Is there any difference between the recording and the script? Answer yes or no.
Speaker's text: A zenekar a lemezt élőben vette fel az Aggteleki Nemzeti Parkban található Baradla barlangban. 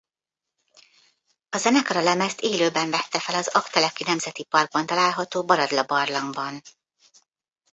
no